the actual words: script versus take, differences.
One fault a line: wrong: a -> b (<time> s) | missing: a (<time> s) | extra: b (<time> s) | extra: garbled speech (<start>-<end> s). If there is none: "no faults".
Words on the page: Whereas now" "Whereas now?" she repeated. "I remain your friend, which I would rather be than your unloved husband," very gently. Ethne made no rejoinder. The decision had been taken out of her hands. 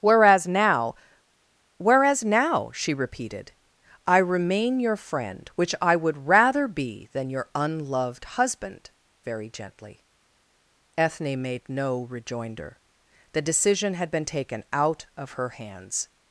no faults